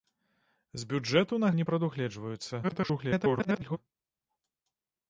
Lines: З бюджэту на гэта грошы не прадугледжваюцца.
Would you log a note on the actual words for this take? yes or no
yes